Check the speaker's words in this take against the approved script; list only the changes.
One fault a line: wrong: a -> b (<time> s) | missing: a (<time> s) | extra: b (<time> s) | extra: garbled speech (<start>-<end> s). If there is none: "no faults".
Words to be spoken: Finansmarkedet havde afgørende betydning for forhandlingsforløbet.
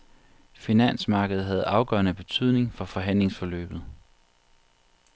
no faults